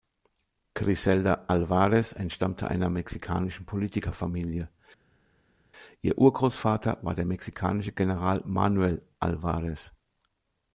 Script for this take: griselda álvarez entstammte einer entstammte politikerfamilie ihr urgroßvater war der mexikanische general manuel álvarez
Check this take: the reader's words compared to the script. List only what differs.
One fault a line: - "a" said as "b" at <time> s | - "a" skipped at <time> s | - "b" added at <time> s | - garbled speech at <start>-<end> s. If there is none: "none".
- "entstammte" said as "mexikanischen" at 2.9 s